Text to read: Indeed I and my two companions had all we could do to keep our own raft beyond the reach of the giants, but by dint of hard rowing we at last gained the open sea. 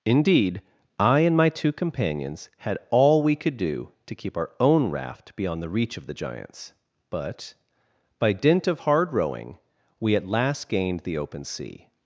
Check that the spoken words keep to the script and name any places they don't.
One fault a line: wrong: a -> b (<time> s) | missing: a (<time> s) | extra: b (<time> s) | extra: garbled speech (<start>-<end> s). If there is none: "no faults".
no faults